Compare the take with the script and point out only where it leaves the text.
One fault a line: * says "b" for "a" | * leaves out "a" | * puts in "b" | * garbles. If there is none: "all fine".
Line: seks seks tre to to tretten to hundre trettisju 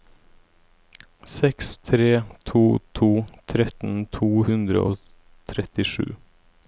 * leaves out "seks"
* puts in "og"